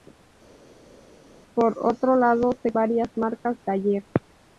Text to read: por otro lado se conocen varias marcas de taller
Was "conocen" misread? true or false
true